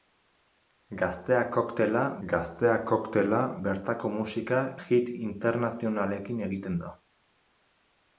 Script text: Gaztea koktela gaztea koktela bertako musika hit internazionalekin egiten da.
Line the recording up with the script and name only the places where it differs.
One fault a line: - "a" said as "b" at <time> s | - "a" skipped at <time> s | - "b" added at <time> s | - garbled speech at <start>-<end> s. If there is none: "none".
none